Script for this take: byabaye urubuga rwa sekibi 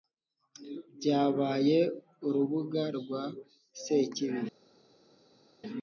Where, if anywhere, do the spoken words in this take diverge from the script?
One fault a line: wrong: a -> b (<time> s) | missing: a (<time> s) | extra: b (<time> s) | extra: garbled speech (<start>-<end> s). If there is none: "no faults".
no faults